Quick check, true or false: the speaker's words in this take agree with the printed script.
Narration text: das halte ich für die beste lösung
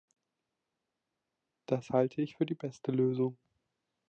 true